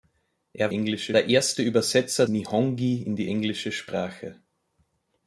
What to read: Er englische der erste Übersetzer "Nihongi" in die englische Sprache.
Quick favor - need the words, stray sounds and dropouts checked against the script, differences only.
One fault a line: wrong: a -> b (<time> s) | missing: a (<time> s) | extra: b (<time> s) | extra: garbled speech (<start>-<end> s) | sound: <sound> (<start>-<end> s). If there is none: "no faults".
no faults